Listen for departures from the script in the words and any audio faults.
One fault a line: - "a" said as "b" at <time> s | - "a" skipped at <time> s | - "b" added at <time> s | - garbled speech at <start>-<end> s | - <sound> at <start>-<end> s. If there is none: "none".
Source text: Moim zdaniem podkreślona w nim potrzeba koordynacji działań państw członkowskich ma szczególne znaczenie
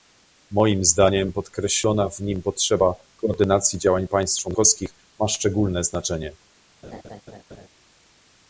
- laugh at 6.8-7.7 s